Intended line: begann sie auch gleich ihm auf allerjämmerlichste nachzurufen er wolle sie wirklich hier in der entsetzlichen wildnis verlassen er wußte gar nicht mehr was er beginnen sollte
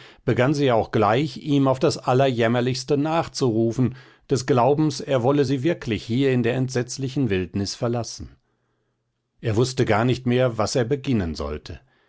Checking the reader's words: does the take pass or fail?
fail